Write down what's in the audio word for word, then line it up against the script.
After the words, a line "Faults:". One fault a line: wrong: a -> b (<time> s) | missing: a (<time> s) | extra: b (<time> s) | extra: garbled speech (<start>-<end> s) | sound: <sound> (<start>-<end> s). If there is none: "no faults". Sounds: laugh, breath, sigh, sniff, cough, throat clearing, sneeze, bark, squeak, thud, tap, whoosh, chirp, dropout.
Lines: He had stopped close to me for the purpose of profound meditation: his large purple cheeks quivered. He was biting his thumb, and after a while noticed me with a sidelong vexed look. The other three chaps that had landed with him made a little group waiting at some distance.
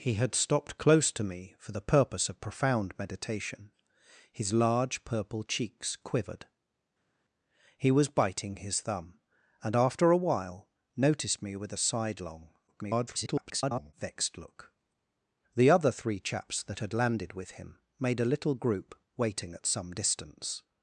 He had stopped close to me for the purpose of profound meditation: his large purple cheeks quivered. He was biting his thumb, and after a while noticed me with a sidelong [garbled] vexed look. The other three chaps that had landed with him made a little group waiting at some distance.
Faults:
extra: garbled speech (12.7-13.9 s)